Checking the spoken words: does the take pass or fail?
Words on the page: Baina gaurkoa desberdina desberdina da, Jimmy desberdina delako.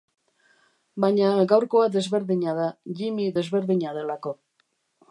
fail